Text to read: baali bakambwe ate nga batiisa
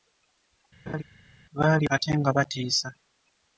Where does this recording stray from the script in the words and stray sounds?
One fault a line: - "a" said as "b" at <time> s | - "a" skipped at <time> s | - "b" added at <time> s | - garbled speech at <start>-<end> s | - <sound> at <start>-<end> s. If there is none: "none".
- laugh at 0.9-1.0 s
- "bakambwe" skipped at 1.9 s